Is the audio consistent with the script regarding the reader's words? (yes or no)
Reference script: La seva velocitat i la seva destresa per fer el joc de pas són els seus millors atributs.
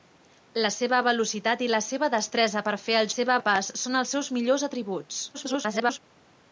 no